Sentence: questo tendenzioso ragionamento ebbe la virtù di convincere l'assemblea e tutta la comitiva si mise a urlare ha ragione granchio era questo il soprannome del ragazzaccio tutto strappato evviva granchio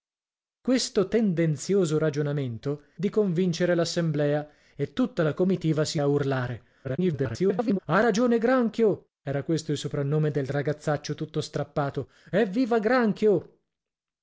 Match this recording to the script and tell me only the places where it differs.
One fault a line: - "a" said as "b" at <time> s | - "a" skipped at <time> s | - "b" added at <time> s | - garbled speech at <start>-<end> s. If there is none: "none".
- "ebbe la virtù" skipped at 2.9 s
- "mise" skipped at 6.0 s
- garbled speech at 6.8-7.8 s